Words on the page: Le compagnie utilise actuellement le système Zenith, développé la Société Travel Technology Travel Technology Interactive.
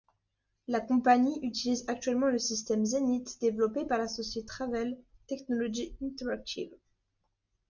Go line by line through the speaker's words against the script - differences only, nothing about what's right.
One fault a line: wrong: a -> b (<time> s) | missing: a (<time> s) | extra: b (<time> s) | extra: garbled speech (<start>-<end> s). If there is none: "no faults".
wrong: Le -> La (0.7 s)
extra: par (3.9 s)
missing: Travel Technology (6.0 s)